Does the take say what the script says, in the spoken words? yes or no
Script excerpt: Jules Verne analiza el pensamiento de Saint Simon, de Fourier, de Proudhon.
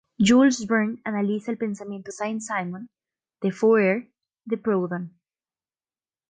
no